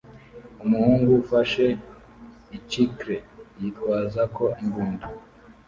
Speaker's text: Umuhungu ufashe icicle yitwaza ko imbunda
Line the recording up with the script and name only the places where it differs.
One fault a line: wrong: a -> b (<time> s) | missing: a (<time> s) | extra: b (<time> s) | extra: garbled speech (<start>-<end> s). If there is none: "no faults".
no faults